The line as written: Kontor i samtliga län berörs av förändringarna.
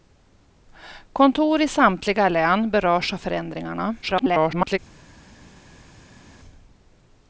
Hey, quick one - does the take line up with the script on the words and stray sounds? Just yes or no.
no